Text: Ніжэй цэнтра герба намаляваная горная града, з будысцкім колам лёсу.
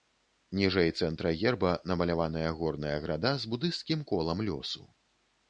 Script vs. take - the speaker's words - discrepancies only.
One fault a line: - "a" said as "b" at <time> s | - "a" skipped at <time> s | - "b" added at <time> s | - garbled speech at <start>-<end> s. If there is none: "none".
none